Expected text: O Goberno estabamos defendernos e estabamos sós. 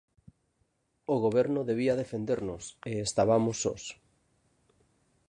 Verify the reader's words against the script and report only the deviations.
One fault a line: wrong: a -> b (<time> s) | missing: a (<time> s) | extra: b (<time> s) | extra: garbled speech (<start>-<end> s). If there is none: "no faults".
wrong: estabamos -> debía (1.7 s)